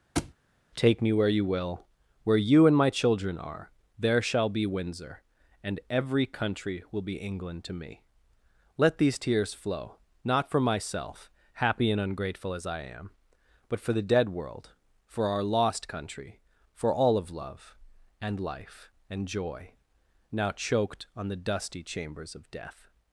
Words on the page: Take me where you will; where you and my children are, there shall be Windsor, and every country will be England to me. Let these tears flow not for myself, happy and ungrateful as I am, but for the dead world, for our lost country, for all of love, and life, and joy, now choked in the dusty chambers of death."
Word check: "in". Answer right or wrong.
wrong